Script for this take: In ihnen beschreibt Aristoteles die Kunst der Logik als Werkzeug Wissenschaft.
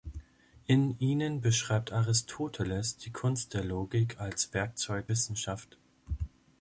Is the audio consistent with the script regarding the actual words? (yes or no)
yes